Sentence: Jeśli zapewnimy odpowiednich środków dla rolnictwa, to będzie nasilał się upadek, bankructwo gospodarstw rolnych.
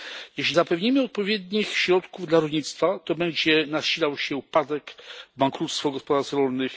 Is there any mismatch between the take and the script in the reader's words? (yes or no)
no